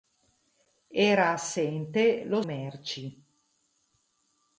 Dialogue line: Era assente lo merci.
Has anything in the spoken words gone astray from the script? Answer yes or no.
no